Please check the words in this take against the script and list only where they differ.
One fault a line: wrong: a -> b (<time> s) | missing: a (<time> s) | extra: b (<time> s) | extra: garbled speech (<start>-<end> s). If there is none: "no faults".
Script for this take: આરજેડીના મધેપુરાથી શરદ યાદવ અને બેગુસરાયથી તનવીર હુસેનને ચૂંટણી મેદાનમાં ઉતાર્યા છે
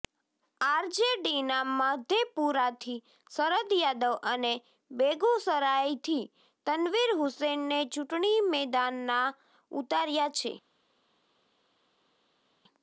no faults